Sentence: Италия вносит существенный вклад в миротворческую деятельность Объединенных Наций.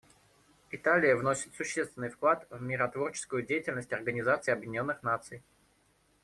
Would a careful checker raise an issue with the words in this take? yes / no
yes